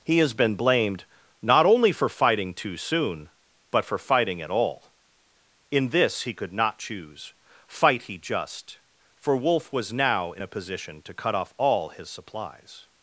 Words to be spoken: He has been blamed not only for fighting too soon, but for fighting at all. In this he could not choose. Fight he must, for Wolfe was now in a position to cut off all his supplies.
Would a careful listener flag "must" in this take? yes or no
yes